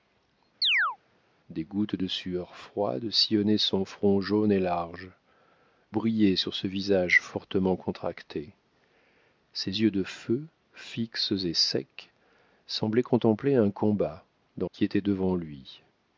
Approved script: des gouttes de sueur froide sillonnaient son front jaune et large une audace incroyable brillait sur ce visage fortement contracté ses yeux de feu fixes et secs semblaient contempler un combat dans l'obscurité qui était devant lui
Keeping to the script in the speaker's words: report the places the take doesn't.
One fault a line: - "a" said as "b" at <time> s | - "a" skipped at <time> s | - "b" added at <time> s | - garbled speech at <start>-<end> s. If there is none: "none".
- "une audace incroyable" skipped at 5.1 s
- "l'obscurité" skipped at 14.7 s